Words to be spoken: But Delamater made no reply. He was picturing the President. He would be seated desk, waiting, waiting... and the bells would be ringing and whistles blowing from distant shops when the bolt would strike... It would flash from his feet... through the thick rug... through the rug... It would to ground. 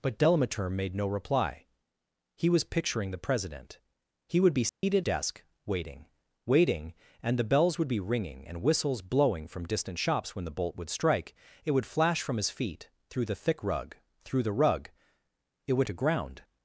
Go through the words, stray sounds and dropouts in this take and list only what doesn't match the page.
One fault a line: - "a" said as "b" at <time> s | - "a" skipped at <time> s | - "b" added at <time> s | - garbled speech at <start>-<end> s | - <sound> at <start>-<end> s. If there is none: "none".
- dropout at 4.7-4.8 s